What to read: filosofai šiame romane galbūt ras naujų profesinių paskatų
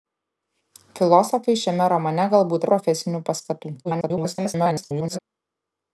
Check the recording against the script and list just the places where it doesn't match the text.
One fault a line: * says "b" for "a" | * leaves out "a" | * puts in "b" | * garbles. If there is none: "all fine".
* leaves out "ras naujų"
* garbles